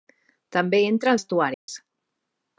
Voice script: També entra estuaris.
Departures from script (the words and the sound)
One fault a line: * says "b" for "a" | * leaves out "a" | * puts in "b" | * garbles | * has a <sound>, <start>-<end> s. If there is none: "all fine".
* has a dropout, 1.5-1.7 s